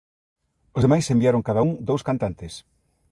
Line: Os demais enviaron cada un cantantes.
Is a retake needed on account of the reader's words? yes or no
yes